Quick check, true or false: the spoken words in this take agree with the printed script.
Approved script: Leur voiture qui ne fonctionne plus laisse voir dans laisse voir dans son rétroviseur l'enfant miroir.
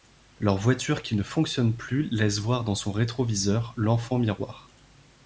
false